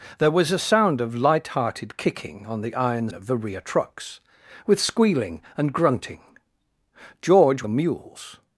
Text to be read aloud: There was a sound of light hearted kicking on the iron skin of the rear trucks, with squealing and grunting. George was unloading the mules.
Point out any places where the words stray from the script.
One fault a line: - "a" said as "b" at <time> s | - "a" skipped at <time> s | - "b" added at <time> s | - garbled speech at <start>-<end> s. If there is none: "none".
- "skin" skipped at 3.1 s
- "was unloading" skipped at 7.6 s